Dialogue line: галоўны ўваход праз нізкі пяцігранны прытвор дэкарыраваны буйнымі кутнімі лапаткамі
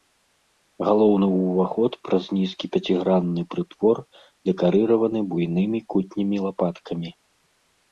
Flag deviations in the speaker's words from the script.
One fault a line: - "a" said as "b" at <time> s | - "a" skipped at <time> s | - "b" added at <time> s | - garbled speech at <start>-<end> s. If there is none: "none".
none